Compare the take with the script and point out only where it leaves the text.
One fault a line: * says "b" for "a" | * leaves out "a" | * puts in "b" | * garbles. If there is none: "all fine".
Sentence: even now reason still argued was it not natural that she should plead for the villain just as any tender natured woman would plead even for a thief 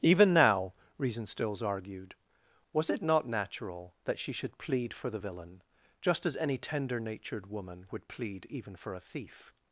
* says "stills" for "still"